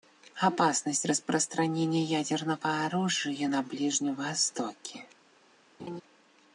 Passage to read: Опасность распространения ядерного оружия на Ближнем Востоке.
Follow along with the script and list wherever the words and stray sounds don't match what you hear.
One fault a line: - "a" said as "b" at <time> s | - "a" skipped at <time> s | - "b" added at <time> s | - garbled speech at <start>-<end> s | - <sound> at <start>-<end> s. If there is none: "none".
- laugh at 5.8-6.0 s